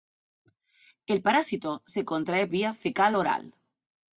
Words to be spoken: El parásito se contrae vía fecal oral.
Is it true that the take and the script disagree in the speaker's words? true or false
false